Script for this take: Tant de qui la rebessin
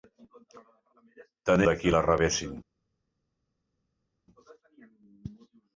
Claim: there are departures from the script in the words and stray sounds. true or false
false